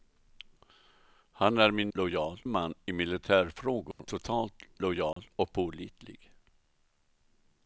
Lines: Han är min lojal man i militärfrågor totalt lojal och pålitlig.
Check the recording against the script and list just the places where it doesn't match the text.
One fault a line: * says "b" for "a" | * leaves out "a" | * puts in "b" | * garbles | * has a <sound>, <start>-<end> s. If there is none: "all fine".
* has a dropout, 3.9-4.0 s
* has a dropout, 5.1-5.2 s